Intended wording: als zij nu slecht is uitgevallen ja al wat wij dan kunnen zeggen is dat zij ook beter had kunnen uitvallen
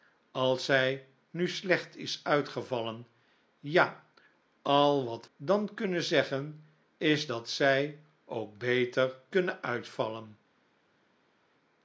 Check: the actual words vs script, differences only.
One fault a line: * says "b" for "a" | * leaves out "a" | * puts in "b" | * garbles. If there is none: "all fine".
* leaves out "wij"
* leaves out "had"